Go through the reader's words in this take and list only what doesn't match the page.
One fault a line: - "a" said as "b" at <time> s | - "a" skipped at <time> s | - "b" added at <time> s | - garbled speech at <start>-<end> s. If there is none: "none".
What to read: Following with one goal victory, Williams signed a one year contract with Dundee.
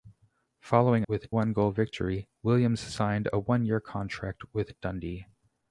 none